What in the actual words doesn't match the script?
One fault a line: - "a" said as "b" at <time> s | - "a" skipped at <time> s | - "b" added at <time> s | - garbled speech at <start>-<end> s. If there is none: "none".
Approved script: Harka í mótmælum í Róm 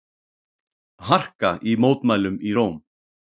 none